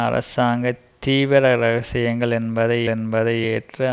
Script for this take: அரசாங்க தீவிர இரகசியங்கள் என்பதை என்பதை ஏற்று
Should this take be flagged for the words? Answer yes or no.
no